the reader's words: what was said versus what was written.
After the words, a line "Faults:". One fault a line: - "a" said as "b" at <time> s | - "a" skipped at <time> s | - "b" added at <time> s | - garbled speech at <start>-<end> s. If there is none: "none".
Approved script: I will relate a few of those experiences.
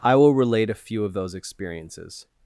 I will relate a few of those experiences.
Faults:
none